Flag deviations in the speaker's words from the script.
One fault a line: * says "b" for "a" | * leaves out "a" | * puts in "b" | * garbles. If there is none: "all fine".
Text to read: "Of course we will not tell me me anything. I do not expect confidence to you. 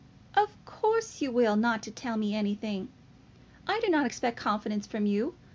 * says "you" for "we"
* leaves out "me"
* says "from" for "to"